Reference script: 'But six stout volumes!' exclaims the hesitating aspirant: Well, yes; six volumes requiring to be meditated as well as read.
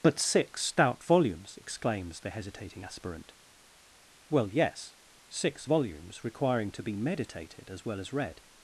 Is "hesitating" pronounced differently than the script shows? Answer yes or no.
no